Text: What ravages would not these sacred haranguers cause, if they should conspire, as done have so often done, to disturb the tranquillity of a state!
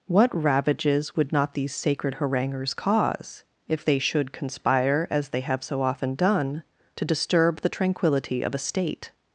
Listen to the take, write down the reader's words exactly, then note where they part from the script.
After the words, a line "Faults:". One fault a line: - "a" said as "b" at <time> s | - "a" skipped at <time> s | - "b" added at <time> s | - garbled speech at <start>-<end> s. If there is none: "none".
What ravages would not these sacred haranguers cause, if they should conspire, as they have so often done, to disturb the tranquillity of a state!
Faults:
- "done" said as "they" at 5.3 s